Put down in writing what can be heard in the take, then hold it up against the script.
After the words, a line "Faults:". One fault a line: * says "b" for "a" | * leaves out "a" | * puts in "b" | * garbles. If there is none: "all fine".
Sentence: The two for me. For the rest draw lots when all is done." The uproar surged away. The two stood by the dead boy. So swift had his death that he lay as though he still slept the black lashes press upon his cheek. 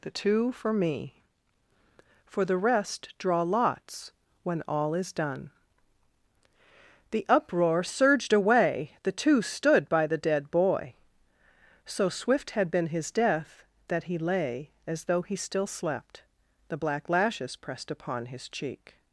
The two for me. For the rest draw lots when all is done." The uproar surged away. The two stood by the dead boy. So swift had been his death that he lay as though he still slept the black lashes pressed upon his cheek.
Faults:
* puts in "been"
* says "pressed" for "press"